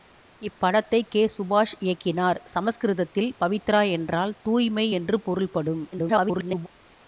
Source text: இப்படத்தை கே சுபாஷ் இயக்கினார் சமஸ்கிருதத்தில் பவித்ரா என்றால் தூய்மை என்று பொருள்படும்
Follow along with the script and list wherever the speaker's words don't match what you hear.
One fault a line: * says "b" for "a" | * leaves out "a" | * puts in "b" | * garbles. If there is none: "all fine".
* garbles